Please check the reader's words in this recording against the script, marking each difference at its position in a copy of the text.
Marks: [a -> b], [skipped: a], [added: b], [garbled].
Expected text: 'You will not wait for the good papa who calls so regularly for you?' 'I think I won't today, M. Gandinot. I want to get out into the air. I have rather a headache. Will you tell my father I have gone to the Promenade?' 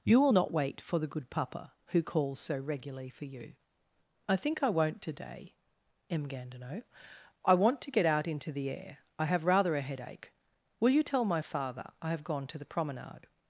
'You will not wait for the good papa who calls so regularly for you?' 'I think I won't today, M. Gandinot. I want to get out into the air. I have rather a headache. Will you tell my father I have gone to the Promenade?'